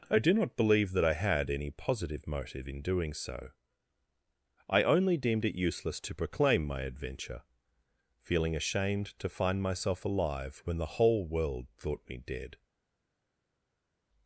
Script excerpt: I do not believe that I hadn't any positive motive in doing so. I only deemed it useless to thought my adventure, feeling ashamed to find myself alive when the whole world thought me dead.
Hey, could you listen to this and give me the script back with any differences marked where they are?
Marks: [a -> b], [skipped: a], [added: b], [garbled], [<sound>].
I do not believe that I [hadn't -> had] any positive motive in doing so. I only deemed it useless to [thought -> proclaim] my adventure, feeling ashamed to find myself alive when the whole world thought me dead.